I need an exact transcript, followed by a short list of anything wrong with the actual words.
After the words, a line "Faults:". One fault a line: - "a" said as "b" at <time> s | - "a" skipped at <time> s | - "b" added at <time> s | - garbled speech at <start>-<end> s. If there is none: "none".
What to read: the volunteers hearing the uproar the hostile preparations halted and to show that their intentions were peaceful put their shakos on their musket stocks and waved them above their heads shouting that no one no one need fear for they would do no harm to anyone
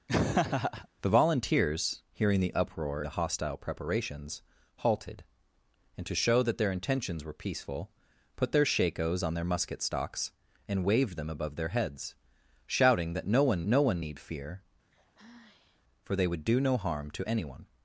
the volunteers hearing the uproar the hostile preparations halted and to show that their intentions were peaceful put their shakos on their musket stocks and waved them above their heads shouting that no one no one need fear for they would do no harm to anyone
Faults:
none